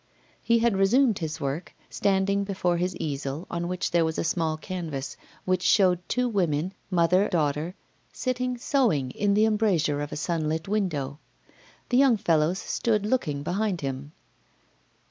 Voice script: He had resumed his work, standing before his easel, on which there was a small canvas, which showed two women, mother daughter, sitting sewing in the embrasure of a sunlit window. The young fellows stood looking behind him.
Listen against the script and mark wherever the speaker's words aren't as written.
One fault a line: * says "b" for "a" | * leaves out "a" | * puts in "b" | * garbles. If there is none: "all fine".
all fine